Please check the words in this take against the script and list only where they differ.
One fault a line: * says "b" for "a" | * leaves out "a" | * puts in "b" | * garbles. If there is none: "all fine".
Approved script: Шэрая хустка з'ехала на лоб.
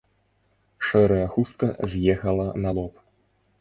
all fine